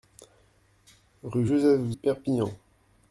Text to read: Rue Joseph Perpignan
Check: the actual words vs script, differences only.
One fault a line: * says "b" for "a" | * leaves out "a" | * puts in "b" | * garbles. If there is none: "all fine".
all fine